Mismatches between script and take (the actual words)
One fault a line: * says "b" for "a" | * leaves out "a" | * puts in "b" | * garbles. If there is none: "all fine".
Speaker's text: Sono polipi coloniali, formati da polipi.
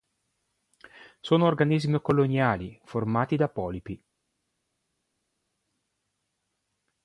* says "organismi" for "polipi"